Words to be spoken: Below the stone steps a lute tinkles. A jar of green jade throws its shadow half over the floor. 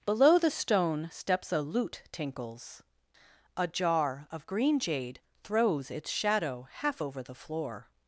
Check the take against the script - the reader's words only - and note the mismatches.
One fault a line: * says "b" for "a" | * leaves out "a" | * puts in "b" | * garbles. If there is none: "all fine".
all fine